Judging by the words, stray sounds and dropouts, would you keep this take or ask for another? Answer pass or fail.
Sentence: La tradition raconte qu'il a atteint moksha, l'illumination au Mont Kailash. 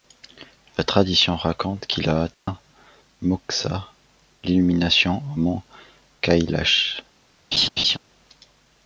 fail